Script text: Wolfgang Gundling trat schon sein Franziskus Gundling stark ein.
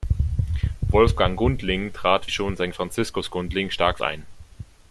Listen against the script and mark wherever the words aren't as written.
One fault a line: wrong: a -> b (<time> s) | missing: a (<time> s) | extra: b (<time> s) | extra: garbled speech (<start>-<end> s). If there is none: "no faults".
no faults